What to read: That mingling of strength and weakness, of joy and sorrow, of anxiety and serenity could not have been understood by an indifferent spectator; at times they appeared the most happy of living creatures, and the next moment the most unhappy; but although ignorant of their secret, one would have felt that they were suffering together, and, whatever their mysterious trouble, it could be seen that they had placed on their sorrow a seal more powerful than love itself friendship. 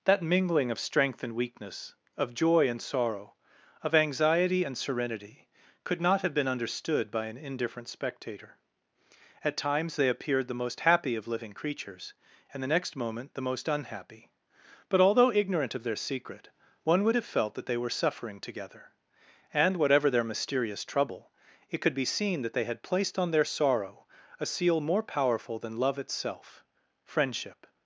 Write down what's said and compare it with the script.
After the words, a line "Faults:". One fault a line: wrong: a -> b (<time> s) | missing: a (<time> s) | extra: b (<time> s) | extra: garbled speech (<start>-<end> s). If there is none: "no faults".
That mingling of strength and weakness, of joy and sorrow, of anxiety and serenity could not have been understood by an indifferent spectator; at times they appeared the most happy of living creatures, and the next moment the most unhappy; but although ignorant of their secret, one would have felt that they were suffering together, and, whatever their mysterious trouble, it could be seen that they had placed on their sorrow a seal more powerful than love itself friendship.
Faults:
no faults